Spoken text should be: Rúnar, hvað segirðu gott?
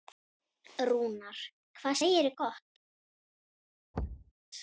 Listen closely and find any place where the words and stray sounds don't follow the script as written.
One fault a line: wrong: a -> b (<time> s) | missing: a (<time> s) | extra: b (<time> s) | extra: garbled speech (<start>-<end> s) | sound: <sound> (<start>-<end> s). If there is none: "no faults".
sound: thud (3.9-4.3 s)